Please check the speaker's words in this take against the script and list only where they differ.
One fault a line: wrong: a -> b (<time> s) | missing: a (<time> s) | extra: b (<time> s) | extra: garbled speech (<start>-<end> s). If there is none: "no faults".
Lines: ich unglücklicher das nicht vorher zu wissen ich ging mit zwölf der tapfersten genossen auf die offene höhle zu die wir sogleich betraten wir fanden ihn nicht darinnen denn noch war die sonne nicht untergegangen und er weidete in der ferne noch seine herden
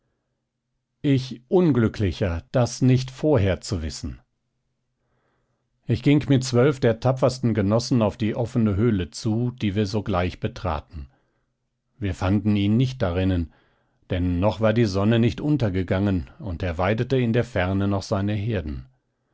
no faults